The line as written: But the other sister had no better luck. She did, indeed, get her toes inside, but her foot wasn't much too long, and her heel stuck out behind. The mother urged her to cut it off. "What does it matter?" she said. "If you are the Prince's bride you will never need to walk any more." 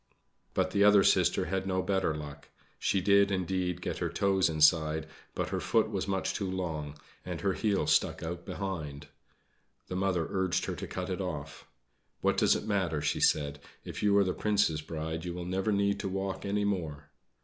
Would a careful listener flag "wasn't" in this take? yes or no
yes